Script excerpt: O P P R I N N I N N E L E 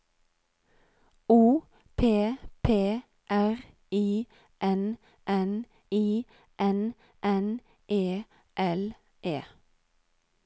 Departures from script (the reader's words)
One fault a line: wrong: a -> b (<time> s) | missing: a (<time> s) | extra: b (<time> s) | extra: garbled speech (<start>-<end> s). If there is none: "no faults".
no faults